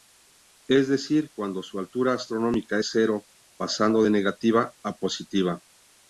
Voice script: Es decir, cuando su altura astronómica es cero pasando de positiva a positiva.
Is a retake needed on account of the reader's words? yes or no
yes